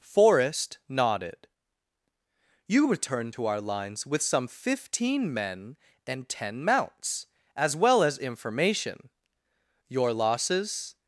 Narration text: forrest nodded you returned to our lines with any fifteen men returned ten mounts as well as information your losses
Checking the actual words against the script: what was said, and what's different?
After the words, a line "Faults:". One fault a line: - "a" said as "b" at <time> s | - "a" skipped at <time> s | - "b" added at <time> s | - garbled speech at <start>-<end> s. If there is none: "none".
forrest nodded you returned to our lines with some fifteen men and ten mounts as well as information your losses
Faults:
- "any" said as "some" at 4.2 s
- "returned" said as "and" at 6.1 s